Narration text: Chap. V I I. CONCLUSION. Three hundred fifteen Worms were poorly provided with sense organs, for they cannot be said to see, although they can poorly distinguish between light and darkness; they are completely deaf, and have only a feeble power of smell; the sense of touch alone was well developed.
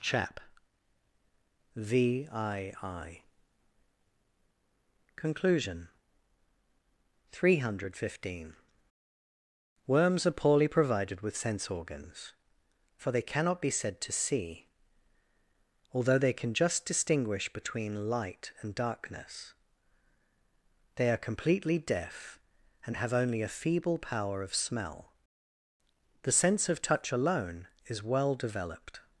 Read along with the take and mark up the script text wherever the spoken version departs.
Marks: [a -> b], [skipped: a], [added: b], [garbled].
Chap. V I I. CONCLUSION. Three hundred fifteen Worms [were -> are] poorly provided with sense organs, for they cannot be said to see, although they can [poorly -> just] distinguish between light and darkness; they are completely deaf, and have only a feeble power of smell; the sense of touch alone [was -> is] well developed.